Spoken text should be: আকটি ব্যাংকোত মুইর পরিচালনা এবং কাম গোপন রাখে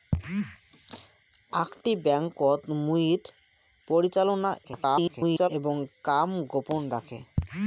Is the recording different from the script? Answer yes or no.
yes